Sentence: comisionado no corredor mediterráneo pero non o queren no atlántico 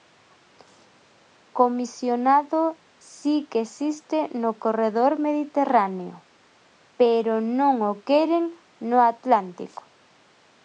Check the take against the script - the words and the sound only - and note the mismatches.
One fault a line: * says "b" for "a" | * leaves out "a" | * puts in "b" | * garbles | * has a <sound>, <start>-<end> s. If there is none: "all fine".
* puts in "si que existe"